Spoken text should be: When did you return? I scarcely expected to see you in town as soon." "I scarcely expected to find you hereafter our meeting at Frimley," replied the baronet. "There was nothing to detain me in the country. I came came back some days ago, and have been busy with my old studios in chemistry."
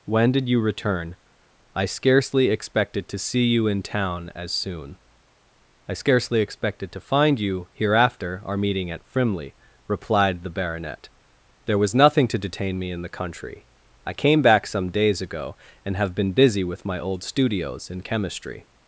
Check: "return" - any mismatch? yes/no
no